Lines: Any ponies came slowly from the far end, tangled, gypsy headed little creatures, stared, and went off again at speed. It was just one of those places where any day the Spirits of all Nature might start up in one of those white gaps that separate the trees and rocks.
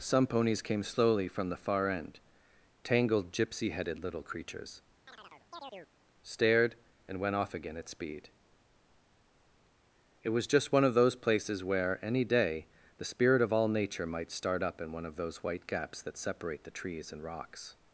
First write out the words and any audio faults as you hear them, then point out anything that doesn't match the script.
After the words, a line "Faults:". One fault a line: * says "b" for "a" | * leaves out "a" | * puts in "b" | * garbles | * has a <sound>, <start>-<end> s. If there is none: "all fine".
Some ponies came slowly from the far end, tangled, gypsy headed little creatures, stared, and went off again at speed. It was just one of those places where any day the Spirit of all Nature might start up in one of those white gaps that separate the trees and rocks.
Faults:
* says "Some" for "Any"
* has a chirp, 5.1-5.9 s
* says "Spirit" for "Spirits"